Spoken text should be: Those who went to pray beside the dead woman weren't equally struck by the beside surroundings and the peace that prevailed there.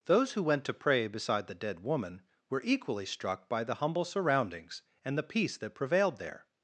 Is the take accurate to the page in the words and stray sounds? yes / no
no